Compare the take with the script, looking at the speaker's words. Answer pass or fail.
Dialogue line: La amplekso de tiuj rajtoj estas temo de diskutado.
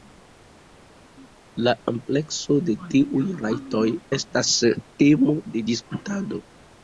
pass